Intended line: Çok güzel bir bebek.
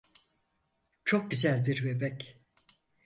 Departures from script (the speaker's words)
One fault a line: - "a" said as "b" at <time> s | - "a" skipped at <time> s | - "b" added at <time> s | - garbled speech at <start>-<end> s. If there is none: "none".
none